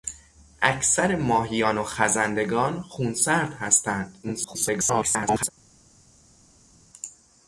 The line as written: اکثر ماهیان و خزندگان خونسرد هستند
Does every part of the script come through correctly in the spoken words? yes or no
no